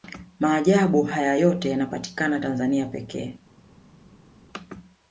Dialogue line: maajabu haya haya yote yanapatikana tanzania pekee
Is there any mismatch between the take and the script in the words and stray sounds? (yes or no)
yes